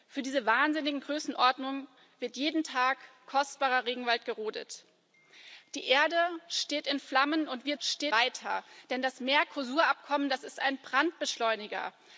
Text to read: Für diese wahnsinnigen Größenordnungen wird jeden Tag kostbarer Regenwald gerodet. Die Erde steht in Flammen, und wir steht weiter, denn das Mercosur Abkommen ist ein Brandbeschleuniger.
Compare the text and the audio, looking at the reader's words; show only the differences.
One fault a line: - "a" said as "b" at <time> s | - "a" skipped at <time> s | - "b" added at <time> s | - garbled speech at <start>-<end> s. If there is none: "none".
none